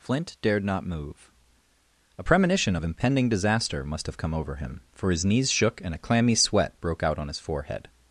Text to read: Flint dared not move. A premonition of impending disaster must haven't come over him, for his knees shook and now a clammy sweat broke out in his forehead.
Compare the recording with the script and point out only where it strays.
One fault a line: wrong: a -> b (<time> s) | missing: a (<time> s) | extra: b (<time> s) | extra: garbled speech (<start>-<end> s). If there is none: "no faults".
wrong: haven't -> have (4.0 s)
missing: now (5.9 s)
wrong: in -> on (7.2 s)